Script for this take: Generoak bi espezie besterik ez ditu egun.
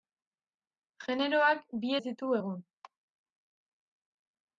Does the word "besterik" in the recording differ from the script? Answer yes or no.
yes